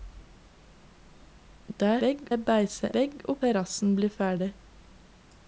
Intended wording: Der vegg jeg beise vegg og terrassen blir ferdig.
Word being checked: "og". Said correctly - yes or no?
yes